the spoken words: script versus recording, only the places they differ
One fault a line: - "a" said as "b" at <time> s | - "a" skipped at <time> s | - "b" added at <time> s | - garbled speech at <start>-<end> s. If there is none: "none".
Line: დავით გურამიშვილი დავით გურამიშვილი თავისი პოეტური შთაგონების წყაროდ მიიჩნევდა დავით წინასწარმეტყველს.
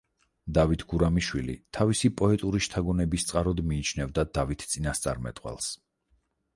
- "დავით გურამიშვილი" skipped at 1.6 s